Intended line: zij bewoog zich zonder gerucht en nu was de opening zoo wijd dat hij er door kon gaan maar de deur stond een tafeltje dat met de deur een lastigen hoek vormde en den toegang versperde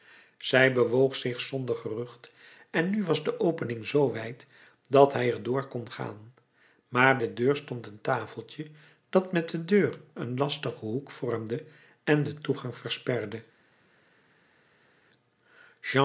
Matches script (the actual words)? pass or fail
pass